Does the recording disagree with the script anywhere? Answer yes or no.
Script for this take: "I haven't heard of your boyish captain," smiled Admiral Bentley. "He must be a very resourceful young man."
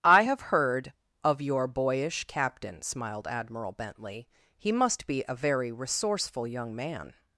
yes